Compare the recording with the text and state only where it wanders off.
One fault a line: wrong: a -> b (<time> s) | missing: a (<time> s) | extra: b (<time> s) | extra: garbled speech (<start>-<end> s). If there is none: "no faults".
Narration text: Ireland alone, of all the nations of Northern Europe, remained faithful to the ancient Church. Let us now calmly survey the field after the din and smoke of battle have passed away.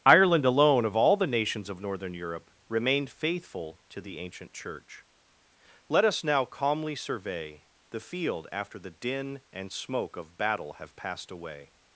no faults